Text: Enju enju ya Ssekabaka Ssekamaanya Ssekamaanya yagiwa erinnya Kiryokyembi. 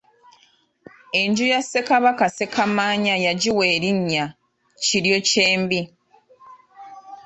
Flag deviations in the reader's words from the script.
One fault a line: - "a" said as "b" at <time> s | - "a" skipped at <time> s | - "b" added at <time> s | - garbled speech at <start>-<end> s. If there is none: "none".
- "enju" skipped at 1.4 s
- "Ssekamaanya" skipped at 3.2 s